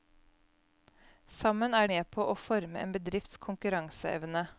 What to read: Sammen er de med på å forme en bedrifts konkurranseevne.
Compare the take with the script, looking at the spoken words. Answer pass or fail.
fail